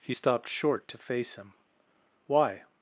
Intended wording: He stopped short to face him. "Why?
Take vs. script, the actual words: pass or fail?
pass